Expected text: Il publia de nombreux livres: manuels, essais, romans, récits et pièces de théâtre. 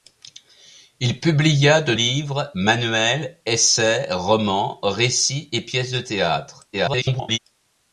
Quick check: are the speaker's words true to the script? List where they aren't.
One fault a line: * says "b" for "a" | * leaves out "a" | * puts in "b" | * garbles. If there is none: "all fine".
* leaves out "nombreux"
* garbles